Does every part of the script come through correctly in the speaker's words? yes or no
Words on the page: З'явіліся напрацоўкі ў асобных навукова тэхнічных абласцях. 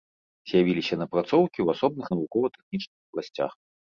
yes